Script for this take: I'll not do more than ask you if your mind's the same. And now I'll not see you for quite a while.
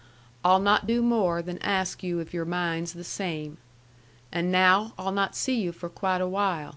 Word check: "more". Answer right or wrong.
right